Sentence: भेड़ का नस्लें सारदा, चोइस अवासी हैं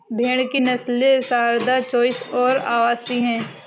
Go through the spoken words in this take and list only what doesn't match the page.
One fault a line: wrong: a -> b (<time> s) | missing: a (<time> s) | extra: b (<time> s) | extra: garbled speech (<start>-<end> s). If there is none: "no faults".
wrong: का -> की (0.4 s)
extra: और (2.3 s)